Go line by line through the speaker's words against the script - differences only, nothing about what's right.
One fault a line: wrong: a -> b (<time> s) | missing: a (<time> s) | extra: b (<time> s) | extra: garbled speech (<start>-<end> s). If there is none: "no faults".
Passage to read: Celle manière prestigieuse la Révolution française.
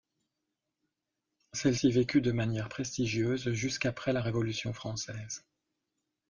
extra: ci vécut de (1.7 s)
extra: jusqu'après (3.5 s)